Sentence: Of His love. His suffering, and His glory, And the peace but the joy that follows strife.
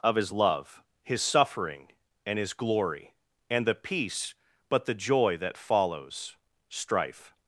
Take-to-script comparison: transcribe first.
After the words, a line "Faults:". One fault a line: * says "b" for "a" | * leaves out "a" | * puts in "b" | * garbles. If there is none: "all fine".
Of His love. His suffering, and His glory, And the peace but the joy that follows strife.
Faults:
all fine